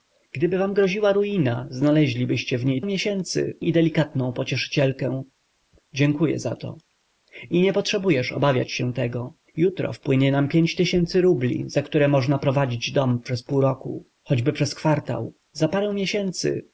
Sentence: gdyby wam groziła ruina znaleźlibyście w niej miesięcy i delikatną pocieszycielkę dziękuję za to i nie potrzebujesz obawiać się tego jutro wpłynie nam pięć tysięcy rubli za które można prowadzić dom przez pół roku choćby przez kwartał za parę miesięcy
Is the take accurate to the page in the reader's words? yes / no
yes